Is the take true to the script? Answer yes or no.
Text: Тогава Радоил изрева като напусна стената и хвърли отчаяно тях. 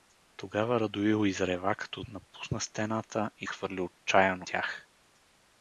yes